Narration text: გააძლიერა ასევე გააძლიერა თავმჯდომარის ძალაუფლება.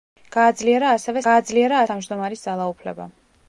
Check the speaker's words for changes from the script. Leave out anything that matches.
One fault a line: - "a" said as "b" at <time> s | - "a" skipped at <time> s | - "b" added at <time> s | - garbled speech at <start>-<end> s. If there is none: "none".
none